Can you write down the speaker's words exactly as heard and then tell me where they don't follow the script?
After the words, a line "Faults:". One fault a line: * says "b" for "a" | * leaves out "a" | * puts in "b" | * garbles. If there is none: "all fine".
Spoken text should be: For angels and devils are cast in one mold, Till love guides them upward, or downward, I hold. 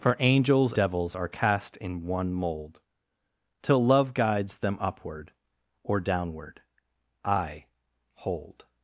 For angels devils are cast in one mold, Till love guides them upward, or downward, I hold.
Faults:
* leaves out "and"